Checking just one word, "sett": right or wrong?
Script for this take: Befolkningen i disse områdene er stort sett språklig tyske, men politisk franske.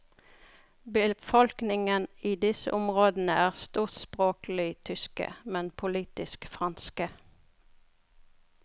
wrong